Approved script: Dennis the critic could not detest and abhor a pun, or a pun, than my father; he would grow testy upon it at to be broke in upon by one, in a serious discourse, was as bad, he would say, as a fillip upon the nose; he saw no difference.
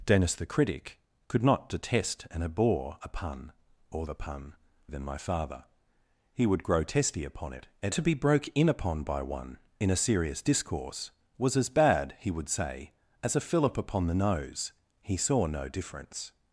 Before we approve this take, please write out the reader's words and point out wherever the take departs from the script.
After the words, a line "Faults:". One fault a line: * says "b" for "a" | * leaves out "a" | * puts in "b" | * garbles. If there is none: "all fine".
Dennis the critic could not detest and abhor a pun, or a pun, than my father; he would grow testy upon it at to be broke in upon by one, in a serious discourse, was as bad, he would say, as a fillip upon the nose; he saw no difference.
Faults:
all fine